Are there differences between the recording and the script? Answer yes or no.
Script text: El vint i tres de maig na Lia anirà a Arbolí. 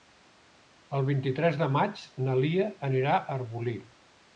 no